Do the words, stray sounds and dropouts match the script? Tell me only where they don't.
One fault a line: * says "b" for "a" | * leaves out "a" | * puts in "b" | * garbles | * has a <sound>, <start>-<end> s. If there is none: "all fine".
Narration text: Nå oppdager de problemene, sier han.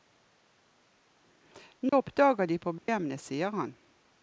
* has a dropout, 1.9-1.9 s
* has a dropout, 2.8-2.9 s